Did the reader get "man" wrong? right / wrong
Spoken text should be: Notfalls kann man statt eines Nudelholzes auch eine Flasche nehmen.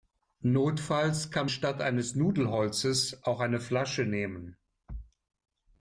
wrong